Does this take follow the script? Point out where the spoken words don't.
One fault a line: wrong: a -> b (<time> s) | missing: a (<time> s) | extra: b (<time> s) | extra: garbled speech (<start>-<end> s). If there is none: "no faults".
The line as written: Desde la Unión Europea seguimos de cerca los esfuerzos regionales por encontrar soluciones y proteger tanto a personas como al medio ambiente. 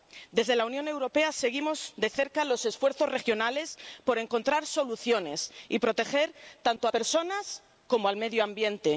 no faults